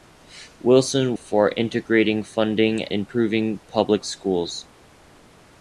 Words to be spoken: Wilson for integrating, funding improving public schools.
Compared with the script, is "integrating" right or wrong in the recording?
right